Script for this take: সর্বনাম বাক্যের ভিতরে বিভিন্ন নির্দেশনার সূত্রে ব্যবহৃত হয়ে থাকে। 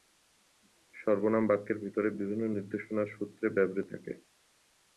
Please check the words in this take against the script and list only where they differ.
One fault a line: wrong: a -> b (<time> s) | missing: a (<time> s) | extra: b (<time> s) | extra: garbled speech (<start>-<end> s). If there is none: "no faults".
missing: হয়ে (3.9 s)